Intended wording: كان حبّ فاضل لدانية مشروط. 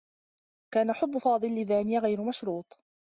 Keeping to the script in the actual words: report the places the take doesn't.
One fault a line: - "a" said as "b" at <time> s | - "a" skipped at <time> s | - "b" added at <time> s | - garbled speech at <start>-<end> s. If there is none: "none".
- "غير" added at 2.0 s